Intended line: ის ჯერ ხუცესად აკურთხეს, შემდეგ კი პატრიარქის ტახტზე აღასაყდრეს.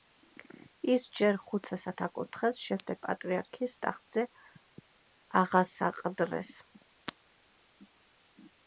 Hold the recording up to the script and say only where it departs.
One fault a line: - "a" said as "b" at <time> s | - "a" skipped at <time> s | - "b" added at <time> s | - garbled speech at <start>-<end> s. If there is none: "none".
- "კი" skipped at 3.0 s